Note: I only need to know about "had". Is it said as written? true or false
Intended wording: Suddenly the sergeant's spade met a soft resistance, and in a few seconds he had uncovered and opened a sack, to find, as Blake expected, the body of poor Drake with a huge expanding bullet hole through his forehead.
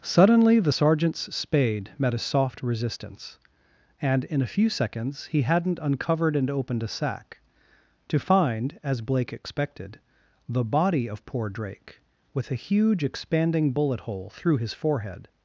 false